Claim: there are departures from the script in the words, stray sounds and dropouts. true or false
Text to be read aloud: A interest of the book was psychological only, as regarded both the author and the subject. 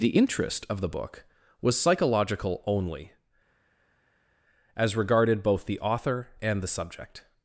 true